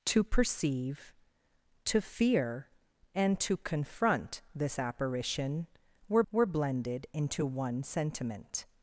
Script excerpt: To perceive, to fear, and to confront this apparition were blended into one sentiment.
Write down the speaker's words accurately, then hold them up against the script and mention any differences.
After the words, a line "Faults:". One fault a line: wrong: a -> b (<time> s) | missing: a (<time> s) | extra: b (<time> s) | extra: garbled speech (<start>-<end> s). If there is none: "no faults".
To perceive, to fear, and to confront this apparition were were blended into one sentiment.
Faults:
extra: were (6.3 s)